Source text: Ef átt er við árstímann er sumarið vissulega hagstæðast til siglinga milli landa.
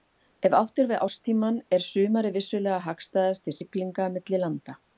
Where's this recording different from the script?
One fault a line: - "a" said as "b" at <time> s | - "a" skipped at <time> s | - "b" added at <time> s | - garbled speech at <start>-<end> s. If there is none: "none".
none